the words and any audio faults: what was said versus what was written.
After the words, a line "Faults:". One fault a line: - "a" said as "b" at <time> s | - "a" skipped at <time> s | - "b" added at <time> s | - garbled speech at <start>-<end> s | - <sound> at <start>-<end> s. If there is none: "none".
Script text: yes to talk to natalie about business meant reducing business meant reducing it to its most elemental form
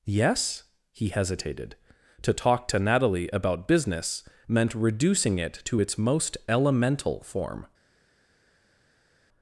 yes he hesitated to talk to natalie about business meant reducing it to its most elemental form
Faults:
- "he hesitated" added at 0.9 s
- "business meant reducing" skipped at 5.4 s